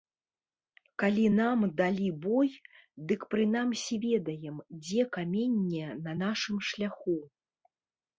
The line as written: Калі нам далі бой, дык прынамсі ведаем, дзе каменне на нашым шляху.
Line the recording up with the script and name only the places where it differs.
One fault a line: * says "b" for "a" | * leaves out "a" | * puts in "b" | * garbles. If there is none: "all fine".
all fine